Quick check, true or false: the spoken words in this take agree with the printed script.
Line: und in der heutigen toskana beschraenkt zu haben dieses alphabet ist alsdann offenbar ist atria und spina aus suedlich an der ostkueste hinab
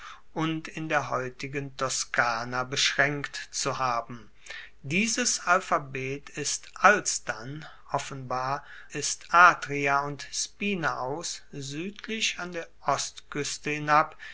true